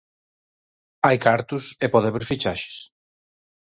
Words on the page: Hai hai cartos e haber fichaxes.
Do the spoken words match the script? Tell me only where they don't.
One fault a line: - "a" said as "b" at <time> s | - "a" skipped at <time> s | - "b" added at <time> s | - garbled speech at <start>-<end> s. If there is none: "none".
- "hai" skipped at 1.2 s
- "pode" added at 1.9 s